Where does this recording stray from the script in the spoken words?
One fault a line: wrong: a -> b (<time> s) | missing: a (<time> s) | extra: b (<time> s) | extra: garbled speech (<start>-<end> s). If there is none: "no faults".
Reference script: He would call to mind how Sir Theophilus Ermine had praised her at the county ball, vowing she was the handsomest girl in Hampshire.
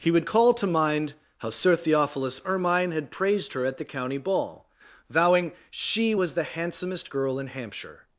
no faults